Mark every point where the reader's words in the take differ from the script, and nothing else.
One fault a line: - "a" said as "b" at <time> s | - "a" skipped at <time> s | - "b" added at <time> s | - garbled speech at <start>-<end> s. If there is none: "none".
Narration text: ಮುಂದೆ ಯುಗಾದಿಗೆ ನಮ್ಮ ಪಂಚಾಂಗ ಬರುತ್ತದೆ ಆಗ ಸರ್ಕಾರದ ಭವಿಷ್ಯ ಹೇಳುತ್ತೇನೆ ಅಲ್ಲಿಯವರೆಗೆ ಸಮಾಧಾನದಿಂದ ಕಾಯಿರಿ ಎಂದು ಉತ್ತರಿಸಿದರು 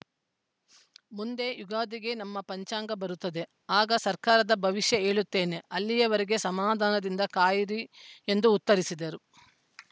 none